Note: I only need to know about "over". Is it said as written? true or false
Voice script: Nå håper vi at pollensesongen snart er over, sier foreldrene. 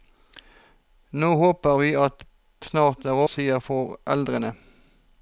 false